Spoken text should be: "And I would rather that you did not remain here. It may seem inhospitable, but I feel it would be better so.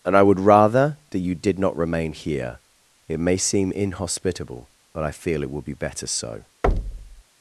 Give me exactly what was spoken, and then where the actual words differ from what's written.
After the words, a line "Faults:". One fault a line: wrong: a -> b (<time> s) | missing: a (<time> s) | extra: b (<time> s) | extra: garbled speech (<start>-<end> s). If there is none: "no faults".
"And I would rather that you did not remain here. It may seem inhospitable, but I feel it would be better so.
Faults:
no faults